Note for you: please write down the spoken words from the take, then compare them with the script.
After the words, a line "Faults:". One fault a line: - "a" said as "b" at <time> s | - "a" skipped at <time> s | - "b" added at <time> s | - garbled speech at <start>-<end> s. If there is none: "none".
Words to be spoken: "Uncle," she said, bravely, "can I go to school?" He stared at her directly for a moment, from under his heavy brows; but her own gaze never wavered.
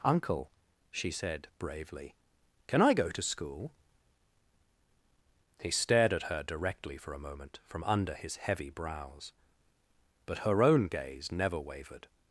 "Uncle," she said, bravely, "can I go to school?" He stared at her directly for a moment, from under his heavy brows; but her own gaze never wavered.
Faults:
none